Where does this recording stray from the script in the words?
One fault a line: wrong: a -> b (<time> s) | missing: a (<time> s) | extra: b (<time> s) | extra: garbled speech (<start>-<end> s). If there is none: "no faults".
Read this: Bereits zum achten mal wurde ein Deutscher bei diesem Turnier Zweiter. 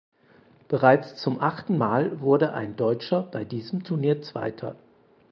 no faults